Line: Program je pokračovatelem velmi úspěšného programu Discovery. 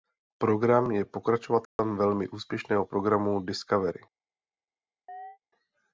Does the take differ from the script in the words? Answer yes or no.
no